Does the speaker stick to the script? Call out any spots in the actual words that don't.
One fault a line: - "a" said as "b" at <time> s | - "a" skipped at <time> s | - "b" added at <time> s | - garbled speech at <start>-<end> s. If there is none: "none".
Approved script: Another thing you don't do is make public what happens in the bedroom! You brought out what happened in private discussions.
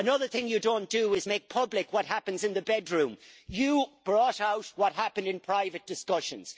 none